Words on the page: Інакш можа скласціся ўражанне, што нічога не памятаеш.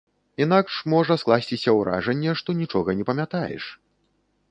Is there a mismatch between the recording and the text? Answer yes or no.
no